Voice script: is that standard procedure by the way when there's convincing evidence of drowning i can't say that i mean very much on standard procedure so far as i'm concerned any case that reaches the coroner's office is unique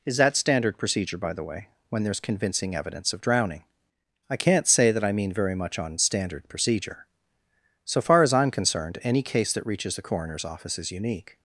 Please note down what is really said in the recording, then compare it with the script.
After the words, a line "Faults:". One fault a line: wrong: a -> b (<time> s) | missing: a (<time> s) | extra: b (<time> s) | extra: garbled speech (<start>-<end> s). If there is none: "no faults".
is that standard procedure by the way when there's convincing evidence of drowning i can't say that i mean very much on standard procedure so far as i'm concerned any case that reaches the coroner's office is unique
Faults:
no faults